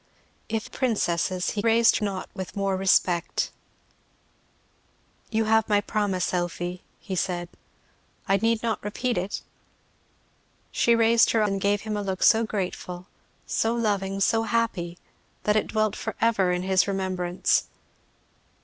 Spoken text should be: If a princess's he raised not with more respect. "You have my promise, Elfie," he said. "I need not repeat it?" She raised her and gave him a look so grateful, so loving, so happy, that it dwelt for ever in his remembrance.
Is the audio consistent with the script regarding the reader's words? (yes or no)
yes